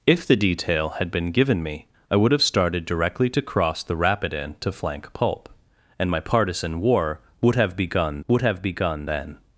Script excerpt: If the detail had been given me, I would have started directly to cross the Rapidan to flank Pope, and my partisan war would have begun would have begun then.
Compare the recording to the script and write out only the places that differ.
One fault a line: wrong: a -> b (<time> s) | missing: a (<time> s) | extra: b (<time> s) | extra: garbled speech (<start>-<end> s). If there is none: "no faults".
no faults